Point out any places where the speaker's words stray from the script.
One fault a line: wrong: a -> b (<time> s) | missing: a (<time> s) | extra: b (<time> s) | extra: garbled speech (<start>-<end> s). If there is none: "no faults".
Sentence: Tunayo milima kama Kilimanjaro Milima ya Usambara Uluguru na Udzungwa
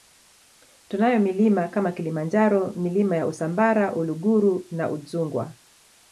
no faults